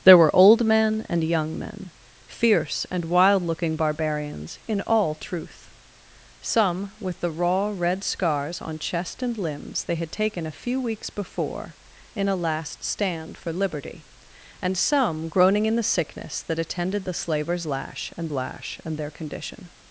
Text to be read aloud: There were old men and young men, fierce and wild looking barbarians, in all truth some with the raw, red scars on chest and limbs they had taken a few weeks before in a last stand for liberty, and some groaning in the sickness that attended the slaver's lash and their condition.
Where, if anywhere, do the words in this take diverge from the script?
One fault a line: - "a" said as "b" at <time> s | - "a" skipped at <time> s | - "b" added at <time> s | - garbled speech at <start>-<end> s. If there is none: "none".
- "lash and" added at 18.3 s